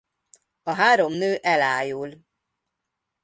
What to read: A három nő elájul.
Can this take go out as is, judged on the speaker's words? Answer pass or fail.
pass